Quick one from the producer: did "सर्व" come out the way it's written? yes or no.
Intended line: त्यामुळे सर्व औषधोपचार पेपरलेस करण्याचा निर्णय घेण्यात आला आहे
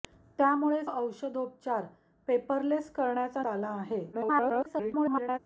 no